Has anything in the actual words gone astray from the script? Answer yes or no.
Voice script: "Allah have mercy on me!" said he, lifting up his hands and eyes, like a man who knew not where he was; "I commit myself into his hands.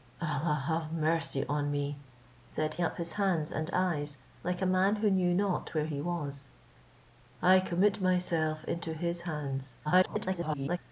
yes